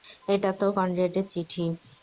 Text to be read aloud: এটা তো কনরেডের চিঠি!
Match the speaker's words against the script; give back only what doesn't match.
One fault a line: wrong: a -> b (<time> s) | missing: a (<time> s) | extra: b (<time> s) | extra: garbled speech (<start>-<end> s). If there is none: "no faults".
no faults